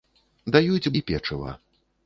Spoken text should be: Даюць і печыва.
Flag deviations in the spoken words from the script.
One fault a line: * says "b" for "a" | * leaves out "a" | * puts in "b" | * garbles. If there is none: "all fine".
all fine